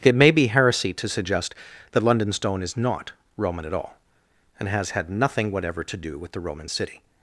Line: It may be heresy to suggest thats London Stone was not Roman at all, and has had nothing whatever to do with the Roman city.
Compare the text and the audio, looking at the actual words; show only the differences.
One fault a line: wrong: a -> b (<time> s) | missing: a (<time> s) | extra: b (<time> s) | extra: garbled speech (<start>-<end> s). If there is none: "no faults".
wrong: thats -> that (1.9 s)
wrong: was -> is (2.6 s)